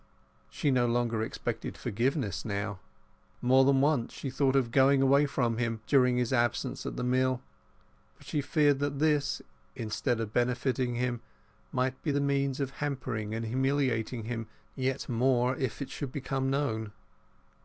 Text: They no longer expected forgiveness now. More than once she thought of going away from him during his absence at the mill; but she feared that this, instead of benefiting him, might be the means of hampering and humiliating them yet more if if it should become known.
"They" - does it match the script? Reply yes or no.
no